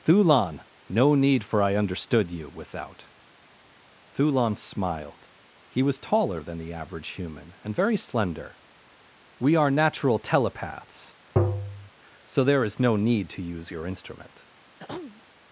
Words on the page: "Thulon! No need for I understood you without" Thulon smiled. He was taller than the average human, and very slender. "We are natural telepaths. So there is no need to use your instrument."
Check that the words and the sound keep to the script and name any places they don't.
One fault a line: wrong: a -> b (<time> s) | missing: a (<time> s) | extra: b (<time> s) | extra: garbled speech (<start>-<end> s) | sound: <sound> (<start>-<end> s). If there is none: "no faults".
sound: tap (11.4-11.9 s)
sound: throat clearing (14.8-15.2 s)